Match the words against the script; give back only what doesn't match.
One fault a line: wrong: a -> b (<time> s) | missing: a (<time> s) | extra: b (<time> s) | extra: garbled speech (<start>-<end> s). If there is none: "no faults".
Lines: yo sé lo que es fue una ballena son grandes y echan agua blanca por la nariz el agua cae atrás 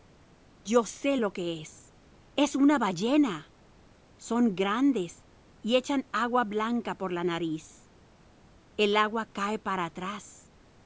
wrong: fue -> es (2.4 s)
extra: para (9.6 s)